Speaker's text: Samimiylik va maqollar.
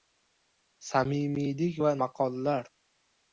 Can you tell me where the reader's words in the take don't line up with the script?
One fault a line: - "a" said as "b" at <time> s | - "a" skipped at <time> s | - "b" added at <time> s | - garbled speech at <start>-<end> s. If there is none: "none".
none